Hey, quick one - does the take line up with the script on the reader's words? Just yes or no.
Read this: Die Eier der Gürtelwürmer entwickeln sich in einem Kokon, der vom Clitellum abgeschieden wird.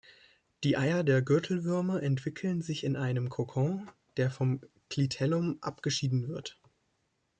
yes